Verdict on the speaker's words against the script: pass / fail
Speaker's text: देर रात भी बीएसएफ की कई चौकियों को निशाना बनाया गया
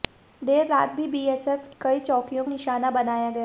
fail